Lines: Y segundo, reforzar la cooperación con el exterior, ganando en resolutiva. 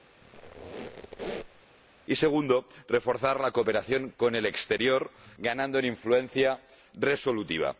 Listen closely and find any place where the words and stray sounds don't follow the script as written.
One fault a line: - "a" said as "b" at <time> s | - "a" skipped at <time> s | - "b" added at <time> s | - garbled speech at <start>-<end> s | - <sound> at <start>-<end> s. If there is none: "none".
- squeak at 0.2-1.6 s
- "influencia" added at 5.9 s